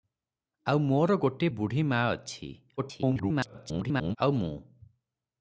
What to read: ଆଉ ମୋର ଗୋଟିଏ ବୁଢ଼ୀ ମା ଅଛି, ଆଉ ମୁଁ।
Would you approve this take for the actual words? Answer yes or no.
no